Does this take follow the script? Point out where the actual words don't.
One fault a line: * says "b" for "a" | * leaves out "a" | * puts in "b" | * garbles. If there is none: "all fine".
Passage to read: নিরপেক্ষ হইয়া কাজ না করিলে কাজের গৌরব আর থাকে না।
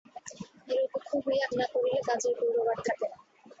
* leaves out "কাজ"